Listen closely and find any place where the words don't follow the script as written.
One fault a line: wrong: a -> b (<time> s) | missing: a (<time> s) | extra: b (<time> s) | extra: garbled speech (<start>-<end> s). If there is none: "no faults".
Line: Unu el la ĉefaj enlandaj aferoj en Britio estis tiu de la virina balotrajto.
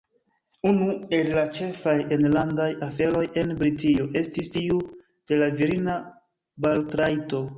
no faults